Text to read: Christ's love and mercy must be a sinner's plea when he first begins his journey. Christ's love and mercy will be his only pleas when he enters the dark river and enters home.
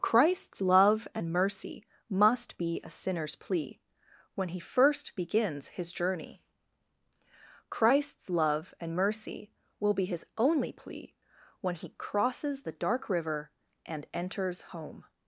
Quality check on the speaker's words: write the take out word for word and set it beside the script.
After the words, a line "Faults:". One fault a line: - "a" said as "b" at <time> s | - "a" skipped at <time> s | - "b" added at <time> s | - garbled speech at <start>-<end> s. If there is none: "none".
Christ's love and mercy must be a sinner's plea when he first begins his journey. Christ's love and mercy will be his only plea when he crosses the dark river and enters home.
Faults:
- "pleas" said as "plea" at 10.7 s
- "enters" said as "crosses" at 12.0 s